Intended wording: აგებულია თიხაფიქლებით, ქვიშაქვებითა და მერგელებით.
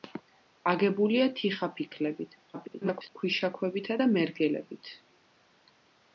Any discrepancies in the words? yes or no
yes